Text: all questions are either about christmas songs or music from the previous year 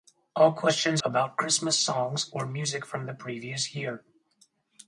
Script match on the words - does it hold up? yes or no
no